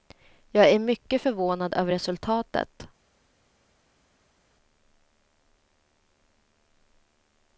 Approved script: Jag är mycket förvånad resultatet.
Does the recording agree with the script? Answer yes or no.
no